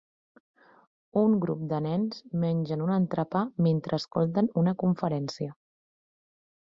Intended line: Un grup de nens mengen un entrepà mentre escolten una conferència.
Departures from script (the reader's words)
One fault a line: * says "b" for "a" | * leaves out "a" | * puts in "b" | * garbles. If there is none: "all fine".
all fine